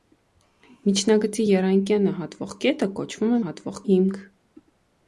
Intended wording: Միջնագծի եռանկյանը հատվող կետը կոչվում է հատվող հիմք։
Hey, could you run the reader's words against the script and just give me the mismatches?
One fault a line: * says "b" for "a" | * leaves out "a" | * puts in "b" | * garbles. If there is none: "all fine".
all fine